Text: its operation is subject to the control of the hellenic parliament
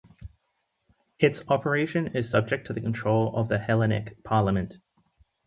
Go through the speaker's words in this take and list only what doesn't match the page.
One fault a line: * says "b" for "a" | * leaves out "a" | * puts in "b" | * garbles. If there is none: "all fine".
all fine